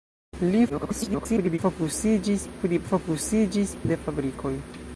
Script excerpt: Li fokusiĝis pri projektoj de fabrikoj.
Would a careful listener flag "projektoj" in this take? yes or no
yes